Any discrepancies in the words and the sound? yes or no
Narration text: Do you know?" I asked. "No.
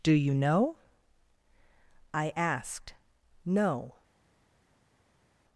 no